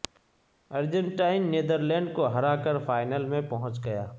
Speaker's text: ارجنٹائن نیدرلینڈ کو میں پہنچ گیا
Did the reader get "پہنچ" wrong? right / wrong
right